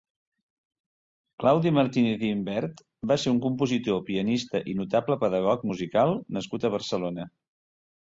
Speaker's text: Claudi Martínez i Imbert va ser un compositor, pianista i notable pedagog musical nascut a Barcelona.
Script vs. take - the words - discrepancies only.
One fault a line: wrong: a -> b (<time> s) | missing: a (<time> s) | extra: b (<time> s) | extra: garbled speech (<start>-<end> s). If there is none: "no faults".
no faults